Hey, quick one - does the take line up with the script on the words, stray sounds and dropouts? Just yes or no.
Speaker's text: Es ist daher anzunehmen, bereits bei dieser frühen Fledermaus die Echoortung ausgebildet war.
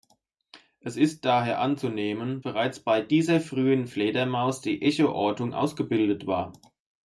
yes